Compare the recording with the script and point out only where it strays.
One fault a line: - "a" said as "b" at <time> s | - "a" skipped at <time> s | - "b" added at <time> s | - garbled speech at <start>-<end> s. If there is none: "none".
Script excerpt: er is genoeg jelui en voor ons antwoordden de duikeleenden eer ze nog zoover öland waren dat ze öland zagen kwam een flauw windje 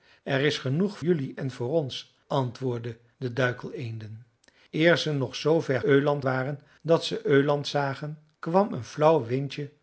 none